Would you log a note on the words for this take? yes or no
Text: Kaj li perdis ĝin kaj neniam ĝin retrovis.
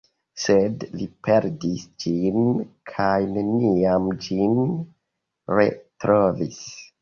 yes